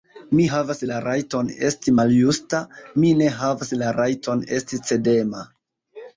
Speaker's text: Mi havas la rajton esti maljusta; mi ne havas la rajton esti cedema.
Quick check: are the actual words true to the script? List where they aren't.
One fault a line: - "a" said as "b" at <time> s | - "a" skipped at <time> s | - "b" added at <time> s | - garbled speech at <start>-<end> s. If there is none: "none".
none